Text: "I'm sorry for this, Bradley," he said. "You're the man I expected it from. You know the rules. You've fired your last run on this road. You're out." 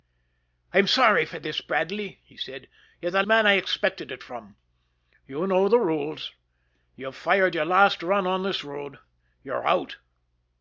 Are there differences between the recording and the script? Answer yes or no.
no